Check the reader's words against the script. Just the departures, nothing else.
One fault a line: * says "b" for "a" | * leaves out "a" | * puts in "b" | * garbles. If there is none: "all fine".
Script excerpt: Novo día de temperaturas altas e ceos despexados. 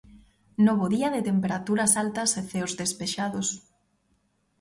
all fine